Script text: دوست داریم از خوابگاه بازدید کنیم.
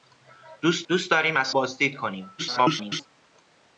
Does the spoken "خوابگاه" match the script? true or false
false